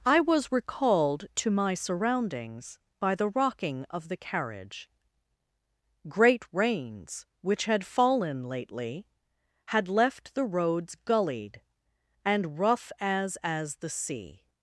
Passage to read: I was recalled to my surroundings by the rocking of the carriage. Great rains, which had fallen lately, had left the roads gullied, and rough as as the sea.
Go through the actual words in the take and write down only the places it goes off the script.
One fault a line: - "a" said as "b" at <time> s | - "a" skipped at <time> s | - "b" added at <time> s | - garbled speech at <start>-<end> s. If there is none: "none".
none